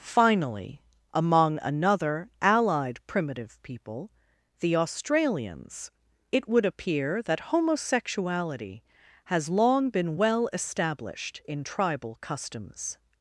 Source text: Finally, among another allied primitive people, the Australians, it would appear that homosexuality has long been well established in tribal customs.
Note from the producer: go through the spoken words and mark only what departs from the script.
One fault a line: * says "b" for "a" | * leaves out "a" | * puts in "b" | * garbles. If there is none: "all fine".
all fine